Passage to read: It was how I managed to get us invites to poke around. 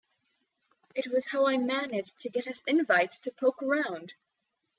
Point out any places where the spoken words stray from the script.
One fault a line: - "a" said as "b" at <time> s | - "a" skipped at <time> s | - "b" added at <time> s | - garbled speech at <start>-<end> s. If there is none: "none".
none